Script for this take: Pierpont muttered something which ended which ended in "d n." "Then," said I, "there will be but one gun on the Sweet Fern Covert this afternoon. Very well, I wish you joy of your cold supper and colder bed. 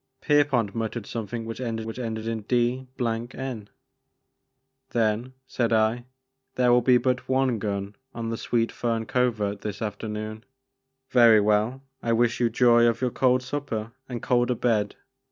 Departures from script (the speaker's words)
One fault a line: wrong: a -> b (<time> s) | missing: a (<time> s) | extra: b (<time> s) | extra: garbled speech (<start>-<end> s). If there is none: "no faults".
no faults